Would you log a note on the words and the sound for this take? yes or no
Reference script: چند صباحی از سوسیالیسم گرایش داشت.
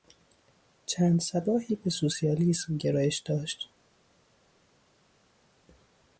yes